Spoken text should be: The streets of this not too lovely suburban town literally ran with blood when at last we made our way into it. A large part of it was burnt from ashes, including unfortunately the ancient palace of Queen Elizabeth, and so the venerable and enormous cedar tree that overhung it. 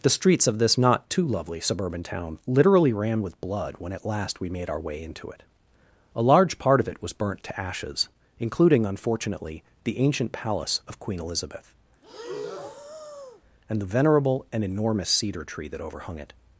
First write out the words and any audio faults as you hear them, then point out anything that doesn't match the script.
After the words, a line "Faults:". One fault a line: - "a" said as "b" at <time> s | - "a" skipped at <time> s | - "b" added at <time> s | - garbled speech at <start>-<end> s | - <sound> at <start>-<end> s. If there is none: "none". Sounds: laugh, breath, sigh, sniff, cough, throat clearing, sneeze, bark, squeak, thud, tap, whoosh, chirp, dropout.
The streets of this not too lovely suburban town literally ran with blood when at last we made our way into it. A large part of it was burnt to ashes, including unfortunately the ancient palace of Queen Elizabeth, and the venerable and enormous cedar tree that overhung it.
Faults:
- "from" said as "to" at 7.4 s
- breath at 12.0-13.4 s
- "so" skipped at 13.8 s